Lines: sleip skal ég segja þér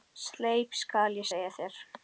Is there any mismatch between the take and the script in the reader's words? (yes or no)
no